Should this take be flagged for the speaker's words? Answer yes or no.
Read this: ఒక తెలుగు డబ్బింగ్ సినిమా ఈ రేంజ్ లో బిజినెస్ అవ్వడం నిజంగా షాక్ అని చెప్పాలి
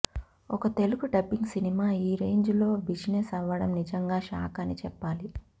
no